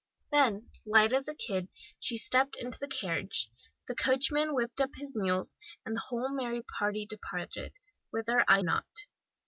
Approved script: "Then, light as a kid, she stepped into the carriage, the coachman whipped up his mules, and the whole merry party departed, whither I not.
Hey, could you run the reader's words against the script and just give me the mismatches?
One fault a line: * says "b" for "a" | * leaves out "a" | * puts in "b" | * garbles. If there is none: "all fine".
all fine